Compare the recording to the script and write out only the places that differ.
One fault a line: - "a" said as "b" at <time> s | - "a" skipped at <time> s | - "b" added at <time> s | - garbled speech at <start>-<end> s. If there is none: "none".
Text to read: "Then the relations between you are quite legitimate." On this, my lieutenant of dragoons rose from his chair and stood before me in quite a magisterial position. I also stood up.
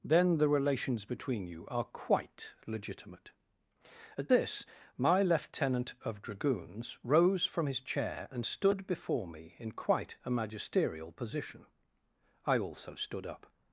- "On" said as "At" at 4.2 s